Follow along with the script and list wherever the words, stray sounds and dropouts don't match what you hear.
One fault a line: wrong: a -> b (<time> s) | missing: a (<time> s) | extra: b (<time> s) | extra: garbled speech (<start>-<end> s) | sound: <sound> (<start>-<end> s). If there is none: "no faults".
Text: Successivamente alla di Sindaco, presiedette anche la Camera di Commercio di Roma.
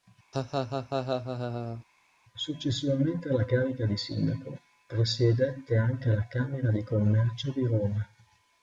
sound: laugh (0.3-1.8 s)
extra: carica (3.4 s)